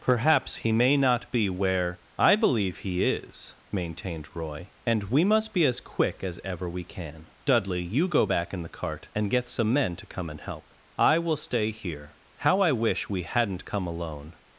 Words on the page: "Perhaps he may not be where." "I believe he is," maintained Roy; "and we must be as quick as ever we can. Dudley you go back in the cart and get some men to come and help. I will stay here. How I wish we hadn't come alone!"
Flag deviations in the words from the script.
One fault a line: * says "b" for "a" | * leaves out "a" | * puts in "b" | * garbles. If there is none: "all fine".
all fine